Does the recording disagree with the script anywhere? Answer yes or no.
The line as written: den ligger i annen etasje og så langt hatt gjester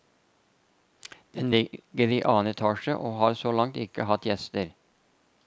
yes